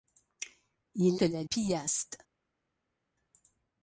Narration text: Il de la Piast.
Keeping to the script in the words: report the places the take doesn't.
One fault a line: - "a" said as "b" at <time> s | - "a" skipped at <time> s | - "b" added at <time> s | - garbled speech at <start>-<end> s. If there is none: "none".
none